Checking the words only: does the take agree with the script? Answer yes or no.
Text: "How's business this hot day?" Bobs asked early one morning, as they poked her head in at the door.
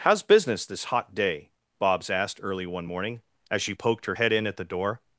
no